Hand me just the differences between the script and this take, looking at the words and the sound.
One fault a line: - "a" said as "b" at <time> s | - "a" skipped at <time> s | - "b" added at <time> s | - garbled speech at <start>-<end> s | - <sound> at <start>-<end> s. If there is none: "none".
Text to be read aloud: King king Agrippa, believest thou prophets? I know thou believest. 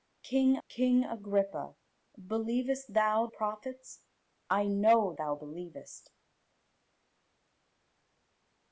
none